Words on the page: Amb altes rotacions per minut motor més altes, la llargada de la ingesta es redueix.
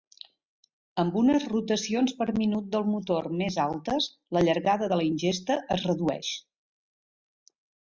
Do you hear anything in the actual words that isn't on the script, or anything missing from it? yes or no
yes